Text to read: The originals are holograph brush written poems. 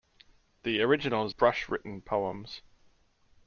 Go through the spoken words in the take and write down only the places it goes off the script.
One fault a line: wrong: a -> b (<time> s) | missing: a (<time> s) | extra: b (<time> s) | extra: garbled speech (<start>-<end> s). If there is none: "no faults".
missing: are holograph (1.4 s)